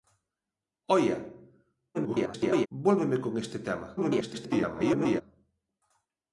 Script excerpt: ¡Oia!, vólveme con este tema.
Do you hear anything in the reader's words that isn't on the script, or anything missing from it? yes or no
yes